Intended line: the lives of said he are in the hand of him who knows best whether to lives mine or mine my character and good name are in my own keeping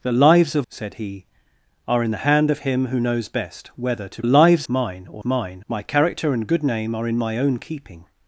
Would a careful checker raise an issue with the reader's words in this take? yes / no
no